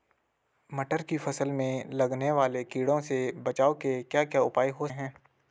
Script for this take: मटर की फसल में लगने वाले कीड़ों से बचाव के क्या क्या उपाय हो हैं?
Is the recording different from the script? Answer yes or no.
no